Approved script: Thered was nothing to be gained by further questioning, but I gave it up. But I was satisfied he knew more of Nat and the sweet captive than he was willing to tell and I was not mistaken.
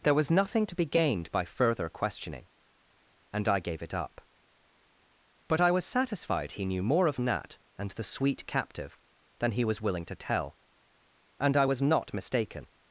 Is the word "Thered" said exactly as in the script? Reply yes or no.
no